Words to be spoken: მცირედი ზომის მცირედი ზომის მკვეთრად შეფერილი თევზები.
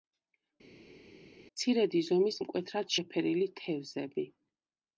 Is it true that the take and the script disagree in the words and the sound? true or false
true